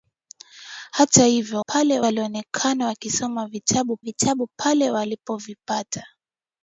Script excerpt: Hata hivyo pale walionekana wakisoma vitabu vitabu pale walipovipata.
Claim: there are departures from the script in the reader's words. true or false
false